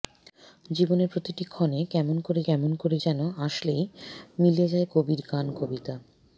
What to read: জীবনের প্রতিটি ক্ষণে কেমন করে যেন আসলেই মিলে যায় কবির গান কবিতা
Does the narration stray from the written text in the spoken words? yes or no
yes